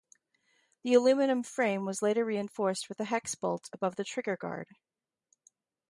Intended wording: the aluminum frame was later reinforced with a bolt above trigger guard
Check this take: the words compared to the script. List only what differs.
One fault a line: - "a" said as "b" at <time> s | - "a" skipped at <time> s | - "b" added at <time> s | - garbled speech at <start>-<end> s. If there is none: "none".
- "hex" added at 3.0 s
- "the" added at 4.0 s